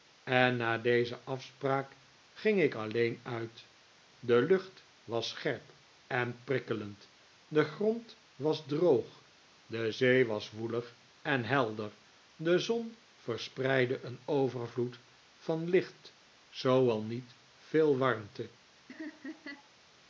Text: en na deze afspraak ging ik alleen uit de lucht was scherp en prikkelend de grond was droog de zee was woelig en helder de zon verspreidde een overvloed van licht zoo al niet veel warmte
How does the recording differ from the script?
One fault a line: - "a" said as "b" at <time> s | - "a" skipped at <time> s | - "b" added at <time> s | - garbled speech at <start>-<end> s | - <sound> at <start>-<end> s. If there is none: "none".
- laugh at 18.9-19.7 s